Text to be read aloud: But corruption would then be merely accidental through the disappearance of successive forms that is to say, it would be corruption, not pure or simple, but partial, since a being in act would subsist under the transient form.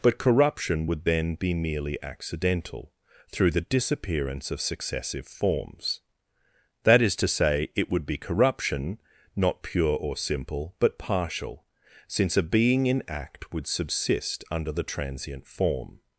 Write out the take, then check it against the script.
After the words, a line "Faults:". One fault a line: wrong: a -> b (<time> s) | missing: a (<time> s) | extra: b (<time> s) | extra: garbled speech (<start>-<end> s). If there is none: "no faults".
But corruption would then be merely accidental through the disappearance of successive forms that is to say, it would be corruption, not pure or simple, but partial, since a being in act would subsist under the transient form.
Faults:
no faults